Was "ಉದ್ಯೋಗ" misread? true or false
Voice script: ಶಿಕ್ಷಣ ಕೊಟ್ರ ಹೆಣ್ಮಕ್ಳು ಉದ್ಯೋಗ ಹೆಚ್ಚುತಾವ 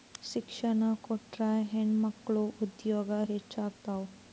false